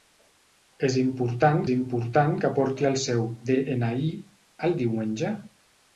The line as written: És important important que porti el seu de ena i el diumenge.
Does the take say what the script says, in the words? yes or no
yes